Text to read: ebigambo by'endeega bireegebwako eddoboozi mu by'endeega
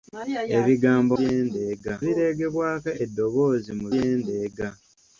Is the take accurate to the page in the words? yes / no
yes